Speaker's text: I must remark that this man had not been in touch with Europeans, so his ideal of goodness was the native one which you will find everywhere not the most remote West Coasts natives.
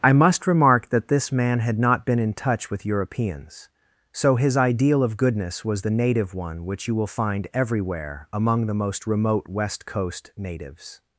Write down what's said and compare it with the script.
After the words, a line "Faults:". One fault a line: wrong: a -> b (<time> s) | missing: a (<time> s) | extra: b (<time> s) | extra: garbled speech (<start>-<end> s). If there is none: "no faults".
I must remark that this man had not been in touch with Europeans, so his ideal of goodness was the native one which you will find everywhere among the most remote West Coast natives.
Faults:
wrong: not -> among (8.3 s)
wrong: Coasts -> Coast (9.8 s)